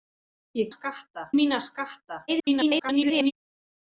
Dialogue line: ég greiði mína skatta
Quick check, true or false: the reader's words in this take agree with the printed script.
false